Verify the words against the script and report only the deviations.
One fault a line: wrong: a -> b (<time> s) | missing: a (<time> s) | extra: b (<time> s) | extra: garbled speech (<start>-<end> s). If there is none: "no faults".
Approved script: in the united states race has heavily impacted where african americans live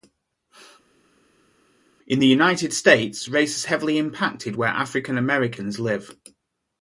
no faults